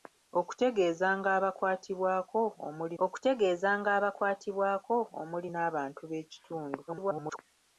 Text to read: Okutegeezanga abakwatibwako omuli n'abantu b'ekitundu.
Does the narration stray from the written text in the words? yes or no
yes